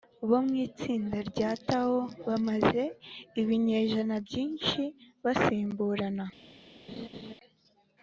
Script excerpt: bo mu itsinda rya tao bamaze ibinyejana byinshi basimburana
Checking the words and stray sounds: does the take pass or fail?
fail